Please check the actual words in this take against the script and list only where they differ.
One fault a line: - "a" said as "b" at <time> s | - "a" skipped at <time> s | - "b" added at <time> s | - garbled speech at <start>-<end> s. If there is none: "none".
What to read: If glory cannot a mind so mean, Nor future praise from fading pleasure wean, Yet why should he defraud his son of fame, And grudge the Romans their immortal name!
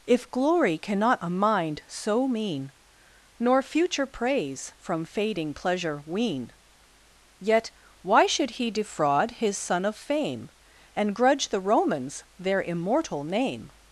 none